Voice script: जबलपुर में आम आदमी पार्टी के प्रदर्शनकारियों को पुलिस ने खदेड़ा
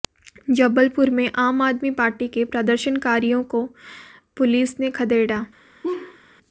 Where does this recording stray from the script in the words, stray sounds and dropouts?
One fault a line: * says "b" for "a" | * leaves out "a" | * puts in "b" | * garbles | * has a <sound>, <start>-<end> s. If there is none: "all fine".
* has a laugh, 5.8-6.2 s